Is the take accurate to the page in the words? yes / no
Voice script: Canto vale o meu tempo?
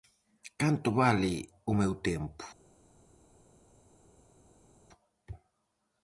yes